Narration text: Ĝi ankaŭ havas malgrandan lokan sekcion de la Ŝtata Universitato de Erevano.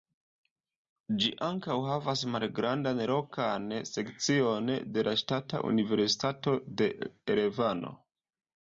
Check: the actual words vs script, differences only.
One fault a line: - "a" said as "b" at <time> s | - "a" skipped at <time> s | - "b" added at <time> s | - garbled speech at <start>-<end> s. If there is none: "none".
none